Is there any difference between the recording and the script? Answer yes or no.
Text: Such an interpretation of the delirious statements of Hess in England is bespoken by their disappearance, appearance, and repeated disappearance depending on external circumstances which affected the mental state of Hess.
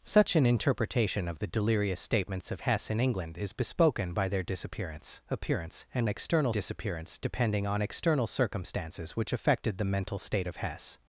yes